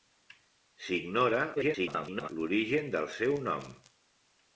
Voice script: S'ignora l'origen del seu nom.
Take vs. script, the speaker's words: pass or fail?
fail